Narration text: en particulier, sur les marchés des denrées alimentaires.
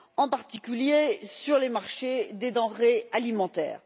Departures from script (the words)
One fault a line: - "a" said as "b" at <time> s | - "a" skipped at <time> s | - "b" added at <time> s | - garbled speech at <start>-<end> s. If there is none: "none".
none